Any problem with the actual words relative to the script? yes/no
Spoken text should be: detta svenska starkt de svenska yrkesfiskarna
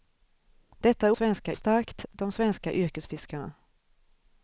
no